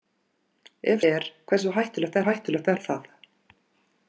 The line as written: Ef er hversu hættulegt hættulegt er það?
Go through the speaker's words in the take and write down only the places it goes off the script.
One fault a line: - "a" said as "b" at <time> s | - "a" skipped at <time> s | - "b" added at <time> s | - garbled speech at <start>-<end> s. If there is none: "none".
none